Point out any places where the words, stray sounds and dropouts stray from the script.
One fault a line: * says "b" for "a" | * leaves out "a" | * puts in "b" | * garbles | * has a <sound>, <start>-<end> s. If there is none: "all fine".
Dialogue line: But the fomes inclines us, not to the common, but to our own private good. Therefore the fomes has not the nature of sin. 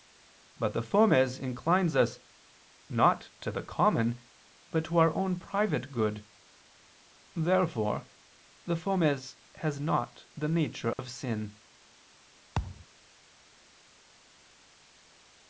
* has a dropout, 10.9-11.0 s
* has a thud, 12.5-12.9 s